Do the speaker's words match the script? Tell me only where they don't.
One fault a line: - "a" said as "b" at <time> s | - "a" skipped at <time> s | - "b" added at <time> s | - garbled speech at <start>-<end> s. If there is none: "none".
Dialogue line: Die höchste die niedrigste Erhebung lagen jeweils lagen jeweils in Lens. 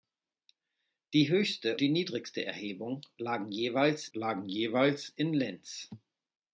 none